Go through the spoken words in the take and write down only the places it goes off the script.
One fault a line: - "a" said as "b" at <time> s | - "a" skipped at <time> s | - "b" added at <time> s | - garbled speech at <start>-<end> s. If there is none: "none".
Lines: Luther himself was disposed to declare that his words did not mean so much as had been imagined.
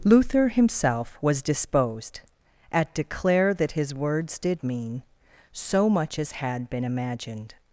- "to" said as "at" at 2.7 s
- "not" skipped at 4.7 s